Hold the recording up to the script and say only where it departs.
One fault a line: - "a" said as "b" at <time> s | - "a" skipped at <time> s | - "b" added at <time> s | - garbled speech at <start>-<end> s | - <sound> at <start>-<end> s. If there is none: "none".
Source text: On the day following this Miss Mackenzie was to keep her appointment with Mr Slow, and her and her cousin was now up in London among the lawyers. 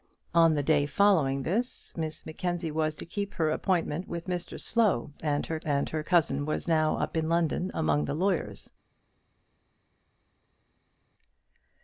none